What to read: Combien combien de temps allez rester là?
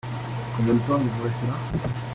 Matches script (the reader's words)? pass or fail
fail